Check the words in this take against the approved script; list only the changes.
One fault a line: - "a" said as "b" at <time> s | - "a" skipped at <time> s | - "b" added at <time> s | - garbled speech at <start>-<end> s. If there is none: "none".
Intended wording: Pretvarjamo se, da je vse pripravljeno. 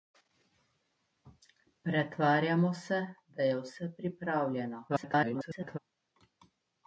- garbled speech at 4.9-5.8 s